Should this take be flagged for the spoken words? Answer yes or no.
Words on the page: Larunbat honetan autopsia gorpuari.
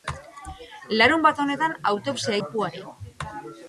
no